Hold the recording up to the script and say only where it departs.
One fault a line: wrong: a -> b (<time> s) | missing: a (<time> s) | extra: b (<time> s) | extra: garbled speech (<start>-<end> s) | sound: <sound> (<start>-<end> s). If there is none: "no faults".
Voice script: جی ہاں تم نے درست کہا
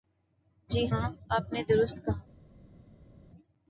wrong: تم -> آپ (1.3 s)